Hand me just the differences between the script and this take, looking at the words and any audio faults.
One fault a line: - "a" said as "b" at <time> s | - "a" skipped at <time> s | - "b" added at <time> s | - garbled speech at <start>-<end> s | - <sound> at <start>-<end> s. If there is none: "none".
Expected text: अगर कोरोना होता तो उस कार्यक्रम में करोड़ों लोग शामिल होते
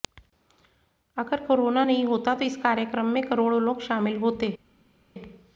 - "नहीं" added at 1.8 s
- "उस" said as "इस" at 2.4 s